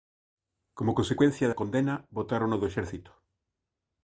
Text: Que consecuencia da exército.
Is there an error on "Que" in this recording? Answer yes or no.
yes